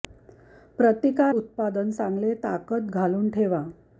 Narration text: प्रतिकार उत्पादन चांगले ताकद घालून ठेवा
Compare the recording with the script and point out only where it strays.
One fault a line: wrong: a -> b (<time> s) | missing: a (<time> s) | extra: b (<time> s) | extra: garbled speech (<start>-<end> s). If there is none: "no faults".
no faults